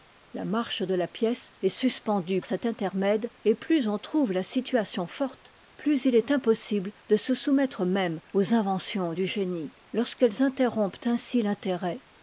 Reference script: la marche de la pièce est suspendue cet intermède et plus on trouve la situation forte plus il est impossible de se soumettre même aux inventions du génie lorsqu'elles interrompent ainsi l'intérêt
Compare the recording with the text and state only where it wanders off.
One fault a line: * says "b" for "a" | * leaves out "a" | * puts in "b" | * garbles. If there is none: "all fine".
all fine